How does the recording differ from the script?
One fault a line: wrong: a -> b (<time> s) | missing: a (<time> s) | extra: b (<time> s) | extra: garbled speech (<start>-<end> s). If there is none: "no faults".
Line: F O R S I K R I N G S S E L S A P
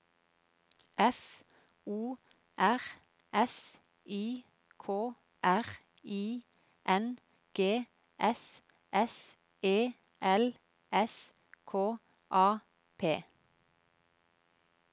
extra: K (11.6 s)